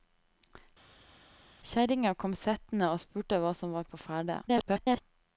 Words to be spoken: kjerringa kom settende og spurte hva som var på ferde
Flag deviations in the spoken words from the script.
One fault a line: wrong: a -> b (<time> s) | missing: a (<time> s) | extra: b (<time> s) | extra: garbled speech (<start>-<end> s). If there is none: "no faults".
extra: garbled speech (4.5-5.0 s)